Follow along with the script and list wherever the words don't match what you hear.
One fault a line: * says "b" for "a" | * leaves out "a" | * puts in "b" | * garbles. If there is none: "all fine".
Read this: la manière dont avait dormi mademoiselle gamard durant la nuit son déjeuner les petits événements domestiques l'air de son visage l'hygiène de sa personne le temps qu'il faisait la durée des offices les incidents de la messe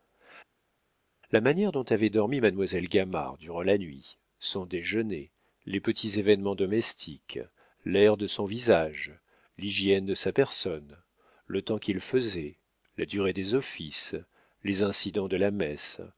all fine